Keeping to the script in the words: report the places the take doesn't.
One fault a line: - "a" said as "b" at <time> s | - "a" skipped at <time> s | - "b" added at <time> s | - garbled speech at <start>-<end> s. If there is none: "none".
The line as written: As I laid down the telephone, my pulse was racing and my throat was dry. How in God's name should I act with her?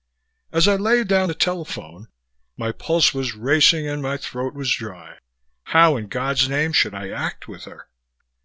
none